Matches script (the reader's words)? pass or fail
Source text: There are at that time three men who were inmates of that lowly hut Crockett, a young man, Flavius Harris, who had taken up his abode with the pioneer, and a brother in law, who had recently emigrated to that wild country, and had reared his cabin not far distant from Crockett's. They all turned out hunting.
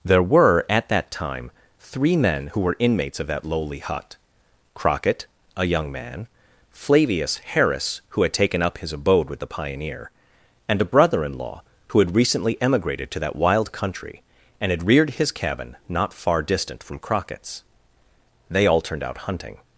fail